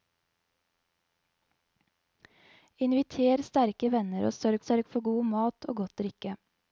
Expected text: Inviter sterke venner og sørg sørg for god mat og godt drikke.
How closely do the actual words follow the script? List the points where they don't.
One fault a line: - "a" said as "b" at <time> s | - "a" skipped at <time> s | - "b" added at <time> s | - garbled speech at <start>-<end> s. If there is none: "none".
none